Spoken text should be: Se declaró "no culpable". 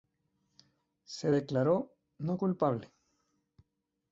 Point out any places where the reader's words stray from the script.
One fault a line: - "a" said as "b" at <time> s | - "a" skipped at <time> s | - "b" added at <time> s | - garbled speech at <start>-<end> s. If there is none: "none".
none